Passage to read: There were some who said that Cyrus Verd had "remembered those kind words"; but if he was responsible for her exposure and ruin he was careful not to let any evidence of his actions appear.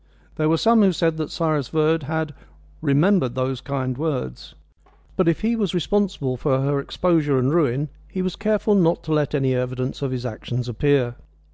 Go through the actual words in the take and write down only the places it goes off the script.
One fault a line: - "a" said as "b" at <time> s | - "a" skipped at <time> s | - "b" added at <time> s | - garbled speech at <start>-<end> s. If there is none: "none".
none